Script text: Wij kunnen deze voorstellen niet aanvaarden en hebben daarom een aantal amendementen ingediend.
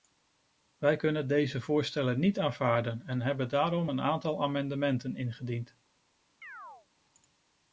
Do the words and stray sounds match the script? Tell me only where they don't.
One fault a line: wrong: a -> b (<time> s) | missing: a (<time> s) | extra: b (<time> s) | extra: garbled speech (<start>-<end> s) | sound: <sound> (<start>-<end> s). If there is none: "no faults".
sound: chirp (6.4-6.9 s)